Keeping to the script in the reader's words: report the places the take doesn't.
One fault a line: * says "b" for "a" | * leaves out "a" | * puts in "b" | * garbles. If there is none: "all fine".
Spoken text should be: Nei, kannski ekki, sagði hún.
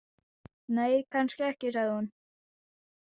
all fine